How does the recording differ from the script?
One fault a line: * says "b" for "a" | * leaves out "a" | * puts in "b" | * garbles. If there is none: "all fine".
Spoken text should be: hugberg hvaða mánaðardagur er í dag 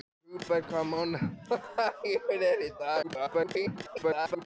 * garbles